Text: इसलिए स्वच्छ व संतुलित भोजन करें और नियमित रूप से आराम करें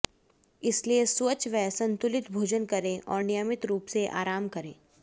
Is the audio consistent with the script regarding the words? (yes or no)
yes